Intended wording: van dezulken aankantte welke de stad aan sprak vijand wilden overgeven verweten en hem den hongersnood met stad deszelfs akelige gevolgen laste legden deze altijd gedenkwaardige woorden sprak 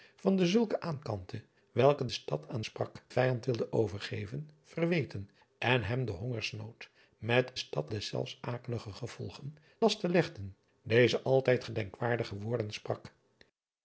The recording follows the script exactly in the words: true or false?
true